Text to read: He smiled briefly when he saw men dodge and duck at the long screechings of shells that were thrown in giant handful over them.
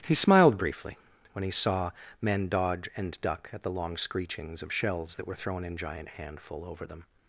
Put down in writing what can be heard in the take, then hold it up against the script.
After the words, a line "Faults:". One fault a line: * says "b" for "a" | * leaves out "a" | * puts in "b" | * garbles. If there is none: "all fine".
He smiled briefly when he saw men dodge and duck at the long screechings of shells that were thrown in giant handful over them.
Faults:
all fine